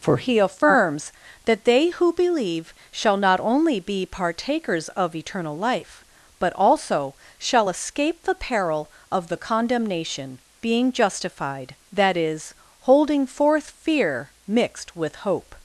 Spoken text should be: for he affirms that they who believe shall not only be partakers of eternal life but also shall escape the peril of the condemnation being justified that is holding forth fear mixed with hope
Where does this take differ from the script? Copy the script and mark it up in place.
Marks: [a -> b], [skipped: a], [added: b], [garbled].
for he affirms that they who believe shall not only be partakers of eternal life but also shall escape the peril of the condemnation being justified that is holding forth fear mixed with hope